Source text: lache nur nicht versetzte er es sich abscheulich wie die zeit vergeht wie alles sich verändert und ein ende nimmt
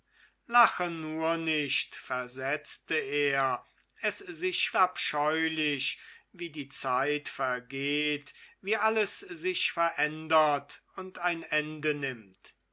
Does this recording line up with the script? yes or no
yes